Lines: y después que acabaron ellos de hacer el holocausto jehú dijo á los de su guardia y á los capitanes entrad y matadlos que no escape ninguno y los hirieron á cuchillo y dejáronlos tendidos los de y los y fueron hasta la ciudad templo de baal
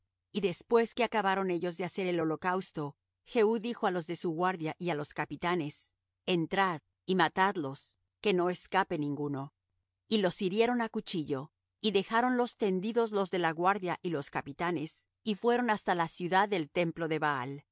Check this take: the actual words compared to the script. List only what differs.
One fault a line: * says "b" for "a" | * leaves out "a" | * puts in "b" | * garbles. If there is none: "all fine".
* puts in "la guardia"
* puts in "capitanes"
* puts in "del"